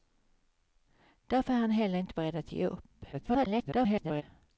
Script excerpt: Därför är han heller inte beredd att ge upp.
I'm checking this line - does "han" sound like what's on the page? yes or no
yes